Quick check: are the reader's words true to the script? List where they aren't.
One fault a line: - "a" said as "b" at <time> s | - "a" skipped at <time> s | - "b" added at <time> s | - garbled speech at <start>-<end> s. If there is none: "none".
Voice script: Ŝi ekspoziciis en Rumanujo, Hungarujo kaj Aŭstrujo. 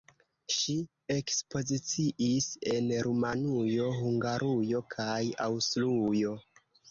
none